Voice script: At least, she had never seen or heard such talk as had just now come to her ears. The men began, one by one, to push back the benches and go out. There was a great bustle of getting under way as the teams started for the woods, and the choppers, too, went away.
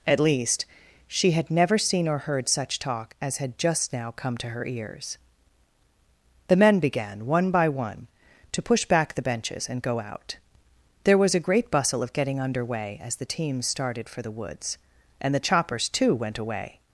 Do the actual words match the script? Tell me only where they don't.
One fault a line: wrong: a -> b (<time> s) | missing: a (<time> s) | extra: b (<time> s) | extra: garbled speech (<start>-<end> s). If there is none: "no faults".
no faults